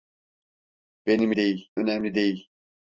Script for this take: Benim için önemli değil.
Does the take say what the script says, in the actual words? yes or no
no